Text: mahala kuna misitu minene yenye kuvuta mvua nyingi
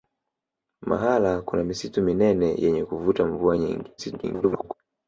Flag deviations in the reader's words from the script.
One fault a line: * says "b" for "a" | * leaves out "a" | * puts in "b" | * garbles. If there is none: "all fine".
* garbles